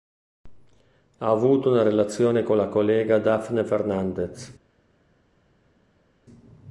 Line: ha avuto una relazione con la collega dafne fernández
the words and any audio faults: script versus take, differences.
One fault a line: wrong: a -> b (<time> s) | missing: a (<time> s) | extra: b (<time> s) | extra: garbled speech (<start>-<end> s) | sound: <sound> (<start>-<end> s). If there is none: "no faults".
no faults